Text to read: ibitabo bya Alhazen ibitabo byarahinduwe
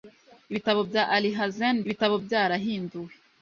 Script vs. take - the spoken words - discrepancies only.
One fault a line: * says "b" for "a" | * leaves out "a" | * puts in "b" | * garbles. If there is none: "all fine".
all fine